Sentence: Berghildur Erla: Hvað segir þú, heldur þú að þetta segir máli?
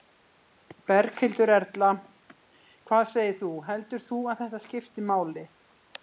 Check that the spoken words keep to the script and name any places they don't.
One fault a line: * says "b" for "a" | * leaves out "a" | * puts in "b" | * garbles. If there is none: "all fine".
* says "skipti" for "segir"